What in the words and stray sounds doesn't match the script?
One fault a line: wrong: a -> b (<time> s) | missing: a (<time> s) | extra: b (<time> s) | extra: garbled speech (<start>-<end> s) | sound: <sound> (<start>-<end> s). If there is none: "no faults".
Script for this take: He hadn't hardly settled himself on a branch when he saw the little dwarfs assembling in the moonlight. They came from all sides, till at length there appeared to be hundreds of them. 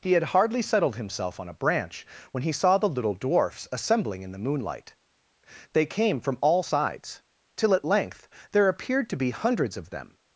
wrong: hadn't -> had (0.1 s)